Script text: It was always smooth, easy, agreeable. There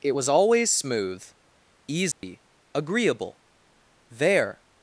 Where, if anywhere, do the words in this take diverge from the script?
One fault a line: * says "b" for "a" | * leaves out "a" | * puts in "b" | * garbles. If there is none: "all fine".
all fine